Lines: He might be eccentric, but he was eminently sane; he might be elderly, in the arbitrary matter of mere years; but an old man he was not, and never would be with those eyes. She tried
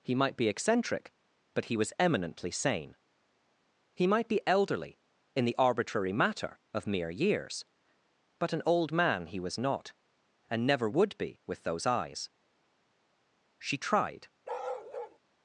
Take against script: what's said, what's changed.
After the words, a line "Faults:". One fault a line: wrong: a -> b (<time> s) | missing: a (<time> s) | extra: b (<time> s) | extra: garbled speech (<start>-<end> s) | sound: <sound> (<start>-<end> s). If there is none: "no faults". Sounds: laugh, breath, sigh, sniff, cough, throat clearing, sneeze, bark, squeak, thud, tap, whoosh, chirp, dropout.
He might be eccentric, but he was eminently sane; he might be elderly, in the arbitrary matter of mere years; but an old man he was not, and never would be with those eyes. She tried
Faults:
sound: bark (14.4-15.2 s)